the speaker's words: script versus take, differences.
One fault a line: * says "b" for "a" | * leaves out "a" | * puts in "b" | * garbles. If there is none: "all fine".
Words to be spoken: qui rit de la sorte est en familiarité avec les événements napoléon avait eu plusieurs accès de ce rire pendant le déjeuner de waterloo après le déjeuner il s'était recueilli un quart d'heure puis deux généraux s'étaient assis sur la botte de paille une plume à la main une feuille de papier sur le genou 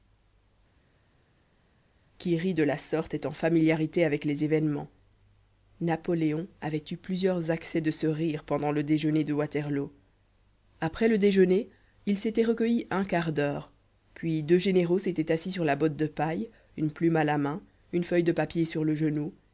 all fine